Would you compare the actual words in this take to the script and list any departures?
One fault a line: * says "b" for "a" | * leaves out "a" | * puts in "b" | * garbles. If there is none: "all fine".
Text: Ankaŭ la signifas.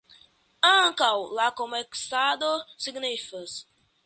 * puts in "komercado"